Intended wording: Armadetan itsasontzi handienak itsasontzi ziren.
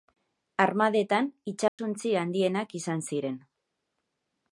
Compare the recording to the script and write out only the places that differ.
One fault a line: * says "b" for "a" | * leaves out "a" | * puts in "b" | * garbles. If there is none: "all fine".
* says "izan" for "itsasontzi"